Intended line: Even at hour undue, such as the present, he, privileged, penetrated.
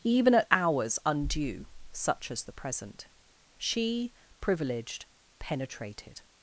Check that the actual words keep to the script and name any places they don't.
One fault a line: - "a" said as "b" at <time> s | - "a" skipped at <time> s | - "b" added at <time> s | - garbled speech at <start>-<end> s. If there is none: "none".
- "hour" said as "hours" at 0.5 s
- "he" said as "she" at 3.6 s